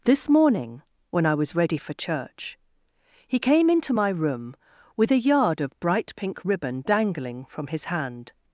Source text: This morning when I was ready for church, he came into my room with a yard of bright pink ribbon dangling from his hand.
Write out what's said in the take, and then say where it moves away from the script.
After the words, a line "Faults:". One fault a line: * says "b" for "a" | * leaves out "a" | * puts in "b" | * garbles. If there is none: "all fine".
This morning when I was ready for church, he came into my room with a yard of bright pink ribbon dangling from his hand.
Faults:
all fine